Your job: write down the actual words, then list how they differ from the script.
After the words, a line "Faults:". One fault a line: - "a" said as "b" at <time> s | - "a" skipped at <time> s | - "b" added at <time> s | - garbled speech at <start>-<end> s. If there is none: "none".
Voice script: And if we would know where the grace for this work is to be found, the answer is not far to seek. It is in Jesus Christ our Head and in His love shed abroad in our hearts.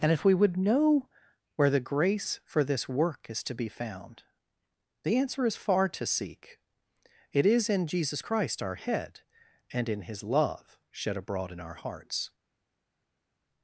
And if we would know where the grace for this work is to be found, the answer is far to seek. It is in Jesus Christ our Head and in His love shed abroad in our hearts.
Faults:
- "not" skipped at 5.5 s